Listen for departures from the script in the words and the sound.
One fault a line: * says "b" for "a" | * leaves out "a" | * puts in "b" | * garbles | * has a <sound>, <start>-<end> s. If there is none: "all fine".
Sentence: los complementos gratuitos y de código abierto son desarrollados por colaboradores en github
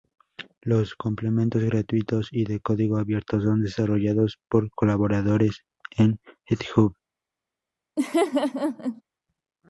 * has a laugh, 8.0-9.0 s